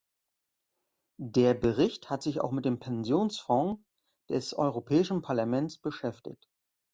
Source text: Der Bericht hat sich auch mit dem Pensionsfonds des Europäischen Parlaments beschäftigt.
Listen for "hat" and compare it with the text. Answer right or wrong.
right